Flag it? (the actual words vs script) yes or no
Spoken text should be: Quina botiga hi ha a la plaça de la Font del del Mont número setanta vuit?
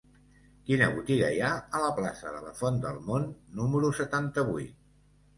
yes